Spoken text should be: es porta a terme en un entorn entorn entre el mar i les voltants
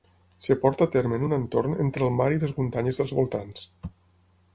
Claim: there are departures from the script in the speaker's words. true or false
true